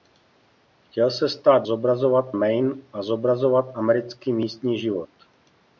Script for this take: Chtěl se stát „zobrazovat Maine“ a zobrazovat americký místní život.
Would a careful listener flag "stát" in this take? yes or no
no